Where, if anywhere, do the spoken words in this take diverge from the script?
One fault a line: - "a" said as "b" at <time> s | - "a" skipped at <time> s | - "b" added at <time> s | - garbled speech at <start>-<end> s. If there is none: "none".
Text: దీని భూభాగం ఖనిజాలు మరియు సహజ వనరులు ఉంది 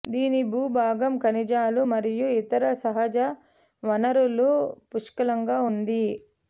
- "ఇతర" added at 2.4 s
- "పుష్కలంగా" added at 4.9 s